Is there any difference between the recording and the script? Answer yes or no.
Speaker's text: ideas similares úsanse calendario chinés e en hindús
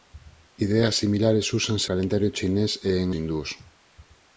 no